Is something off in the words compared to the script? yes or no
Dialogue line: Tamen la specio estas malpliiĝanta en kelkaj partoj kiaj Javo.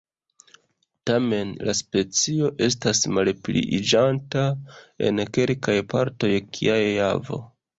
no